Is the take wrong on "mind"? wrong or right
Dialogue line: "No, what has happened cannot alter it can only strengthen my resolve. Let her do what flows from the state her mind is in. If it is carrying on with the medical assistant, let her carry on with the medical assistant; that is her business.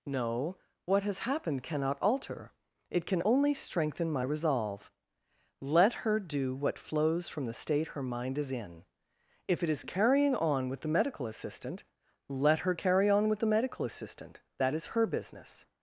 right